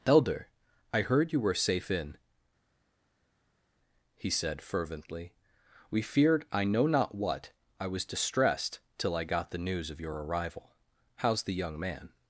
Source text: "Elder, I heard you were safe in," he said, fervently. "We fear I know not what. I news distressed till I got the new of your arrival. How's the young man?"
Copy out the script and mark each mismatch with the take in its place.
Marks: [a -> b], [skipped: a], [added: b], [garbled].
"Elder, I heard you were safe in," he said, fervently. "We [fear -> feared] I know not what. I [news -> was] distressed till I got the [new -> news] of your arrival. How's the young man?"